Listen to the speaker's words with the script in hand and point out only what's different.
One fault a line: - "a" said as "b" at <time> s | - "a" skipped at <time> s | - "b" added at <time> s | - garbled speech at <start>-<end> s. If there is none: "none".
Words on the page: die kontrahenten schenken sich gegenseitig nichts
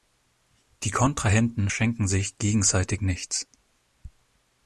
none